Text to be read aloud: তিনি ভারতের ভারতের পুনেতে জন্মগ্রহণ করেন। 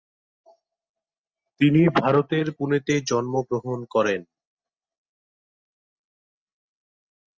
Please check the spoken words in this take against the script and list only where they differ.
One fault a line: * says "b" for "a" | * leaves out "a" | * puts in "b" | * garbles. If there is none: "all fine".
* leaves out "ভারতের"